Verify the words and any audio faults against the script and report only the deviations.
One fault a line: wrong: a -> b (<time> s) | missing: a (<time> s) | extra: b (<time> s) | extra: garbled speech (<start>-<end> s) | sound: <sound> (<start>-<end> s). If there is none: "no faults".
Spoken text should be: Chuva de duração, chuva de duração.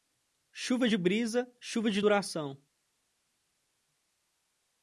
wrong: duração -> brisa (1.0 s)